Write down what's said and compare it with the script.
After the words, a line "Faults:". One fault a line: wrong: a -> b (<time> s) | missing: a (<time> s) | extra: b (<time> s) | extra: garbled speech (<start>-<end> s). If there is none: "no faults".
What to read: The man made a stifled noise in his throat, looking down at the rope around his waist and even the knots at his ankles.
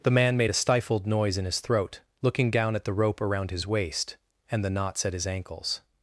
The man made a stifled noise in his throat, looking down at the rope around his waist and the knots at his ankles.
Faults:
missing: even (4.6 s)